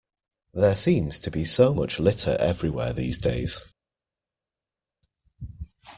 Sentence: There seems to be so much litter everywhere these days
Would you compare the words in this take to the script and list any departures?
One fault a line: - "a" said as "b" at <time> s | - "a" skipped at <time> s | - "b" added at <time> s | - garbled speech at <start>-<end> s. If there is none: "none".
none